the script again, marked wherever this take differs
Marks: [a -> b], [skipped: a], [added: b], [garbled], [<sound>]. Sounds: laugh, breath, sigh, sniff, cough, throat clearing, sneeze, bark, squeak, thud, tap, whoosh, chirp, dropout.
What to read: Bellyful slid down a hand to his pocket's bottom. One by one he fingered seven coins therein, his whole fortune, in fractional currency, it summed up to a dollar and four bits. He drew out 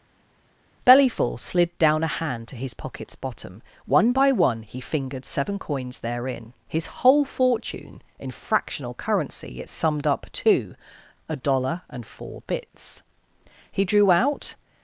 Bellyful slid down a hand to his pocket's bottom. One by one he fingered seven coins therein, his whole fortune, in fractional currency, it summed up to a dollar and four bits. He drew out